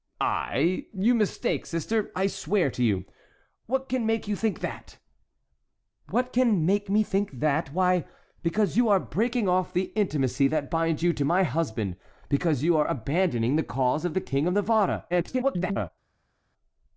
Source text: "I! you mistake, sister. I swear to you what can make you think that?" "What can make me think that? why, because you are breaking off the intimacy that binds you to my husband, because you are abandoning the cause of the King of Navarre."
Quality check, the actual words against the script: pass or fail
fail